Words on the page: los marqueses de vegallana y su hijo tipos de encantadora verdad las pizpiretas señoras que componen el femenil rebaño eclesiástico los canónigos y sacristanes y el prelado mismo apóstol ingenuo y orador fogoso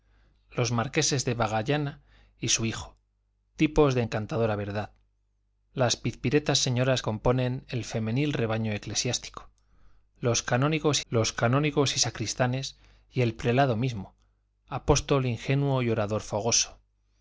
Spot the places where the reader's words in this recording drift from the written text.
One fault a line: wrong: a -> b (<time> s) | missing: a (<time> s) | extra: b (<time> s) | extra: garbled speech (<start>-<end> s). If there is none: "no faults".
missing: que (7.0 s)
extra: los canónigos (11.1 s)